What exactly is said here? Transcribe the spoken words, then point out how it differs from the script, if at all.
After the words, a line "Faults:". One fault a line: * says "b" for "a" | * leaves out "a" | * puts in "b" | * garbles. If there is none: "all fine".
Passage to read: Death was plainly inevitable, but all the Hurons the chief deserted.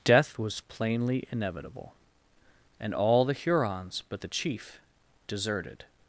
Death was plainly inevitable, and all the Hurons but the chief deserted.
Faults:
* says "and" for "but"
* puts in "but"